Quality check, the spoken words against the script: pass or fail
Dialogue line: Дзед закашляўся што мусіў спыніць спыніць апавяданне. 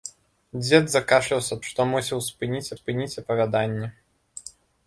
pass